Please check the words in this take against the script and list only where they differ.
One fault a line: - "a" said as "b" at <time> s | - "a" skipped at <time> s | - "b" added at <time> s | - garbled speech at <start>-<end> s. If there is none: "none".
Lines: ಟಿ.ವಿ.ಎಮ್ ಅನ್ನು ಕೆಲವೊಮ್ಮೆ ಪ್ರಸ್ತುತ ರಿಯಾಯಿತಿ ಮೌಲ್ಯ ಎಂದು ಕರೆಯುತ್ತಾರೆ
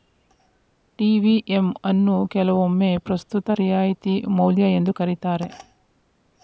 none